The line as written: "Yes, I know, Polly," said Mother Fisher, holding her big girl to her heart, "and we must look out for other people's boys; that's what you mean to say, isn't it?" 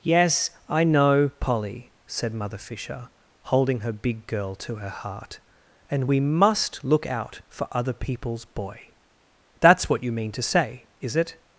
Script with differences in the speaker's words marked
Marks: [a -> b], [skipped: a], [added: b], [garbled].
"Yes, I know, Polly," said Mother Fisher, holding her big girl to her heart, "and we must look out for other people's [boys; -> boy] that's what you mean to say, [isn't -> is] it?"